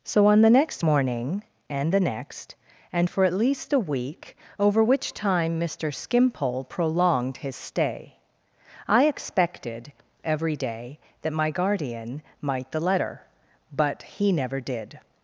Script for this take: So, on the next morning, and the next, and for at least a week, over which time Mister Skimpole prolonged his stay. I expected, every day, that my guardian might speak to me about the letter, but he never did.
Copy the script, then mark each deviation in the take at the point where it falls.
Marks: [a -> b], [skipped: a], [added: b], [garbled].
So, on the next morning, and the next, and for at least a week, over which time Mister Skimpole prolonged his stay. I expected, every day, that my guardian might [skipped: speak to me about] the letter, but he never did.